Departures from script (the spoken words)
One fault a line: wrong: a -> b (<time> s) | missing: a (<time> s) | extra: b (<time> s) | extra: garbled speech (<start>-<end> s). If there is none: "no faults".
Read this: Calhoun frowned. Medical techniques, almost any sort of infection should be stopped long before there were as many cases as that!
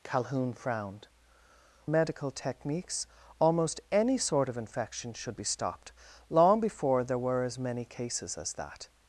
no faults